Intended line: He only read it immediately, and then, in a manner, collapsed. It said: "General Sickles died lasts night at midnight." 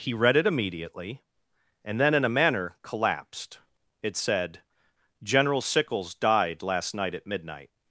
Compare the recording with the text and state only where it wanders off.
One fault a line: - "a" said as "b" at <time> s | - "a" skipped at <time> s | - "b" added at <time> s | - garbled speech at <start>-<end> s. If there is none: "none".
- "only" skipped at 0.1 s
- "lasts" said as "last" at 6.6 s